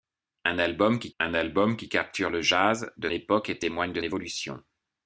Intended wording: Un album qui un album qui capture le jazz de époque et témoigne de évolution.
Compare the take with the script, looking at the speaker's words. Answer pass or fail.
pass